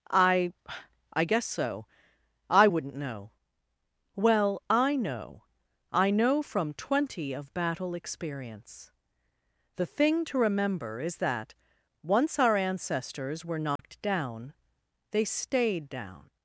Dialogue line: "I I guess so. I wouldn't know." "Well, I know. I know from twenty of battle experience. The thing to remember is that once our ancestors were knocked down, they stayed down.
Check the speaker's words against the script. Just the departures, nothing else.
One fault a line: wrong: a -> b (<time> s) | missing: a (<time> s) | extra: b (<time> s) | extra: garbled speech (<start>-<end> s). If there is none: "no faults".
no faults